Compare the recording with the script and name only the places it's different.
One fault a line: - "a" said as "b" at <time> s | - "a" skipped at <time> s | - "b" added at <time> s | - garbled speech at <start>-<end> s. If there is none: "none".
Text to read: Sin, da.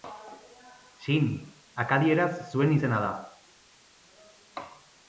- "akadieraz zuen izena" added at 1.9 s